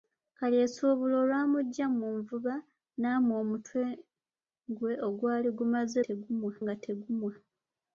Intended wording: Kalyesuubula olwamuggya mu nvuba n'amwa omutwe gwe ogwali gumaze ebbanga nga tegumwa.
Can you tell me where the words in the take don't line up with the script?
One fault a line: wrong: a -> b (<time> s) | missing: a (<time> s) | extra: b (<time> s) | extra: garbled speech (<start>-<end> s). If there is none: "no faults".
wrong: ebbanga -> tegumwa (6.0 s)